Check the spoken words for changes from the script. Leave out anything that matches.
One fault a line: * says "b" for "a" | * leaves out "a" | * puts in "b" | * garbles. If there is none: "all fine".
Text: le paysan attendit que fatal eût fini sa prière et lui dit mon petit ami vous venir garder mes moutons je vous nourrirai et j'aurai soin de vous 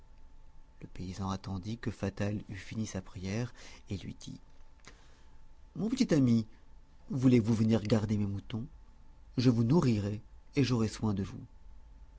* puts in "voulez"